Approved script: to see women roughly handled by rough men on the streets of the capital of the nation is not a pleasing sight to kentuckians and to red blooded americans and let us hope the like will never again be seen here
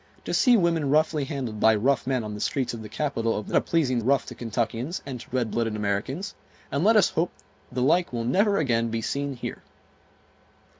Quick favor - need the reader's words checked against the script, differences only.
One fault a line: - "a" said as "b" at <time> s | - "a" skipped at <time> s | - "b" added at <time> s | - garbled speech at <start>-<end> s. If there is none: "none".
- "nation is not" skipped at 3.5 s
- "sight" said as "rough" at 4.0 s